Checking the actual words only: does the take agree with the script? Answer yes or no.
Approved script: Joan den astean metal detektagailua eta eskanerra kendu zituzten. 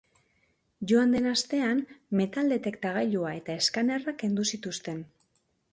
yes